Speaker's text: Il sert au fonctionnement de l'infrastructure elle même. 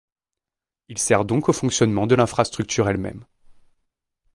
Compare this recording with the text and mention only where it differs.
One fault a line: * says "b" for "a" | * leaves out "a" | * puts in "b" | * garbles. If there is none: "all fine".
* puts in "donc"